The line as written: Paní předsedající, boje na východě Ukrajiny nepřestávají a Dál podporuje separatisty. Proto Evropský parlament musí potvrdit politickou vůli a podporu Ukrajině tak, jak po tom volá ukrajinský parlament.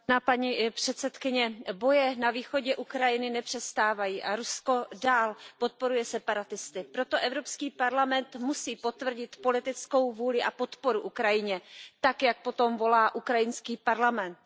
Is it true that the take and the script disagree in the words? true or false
true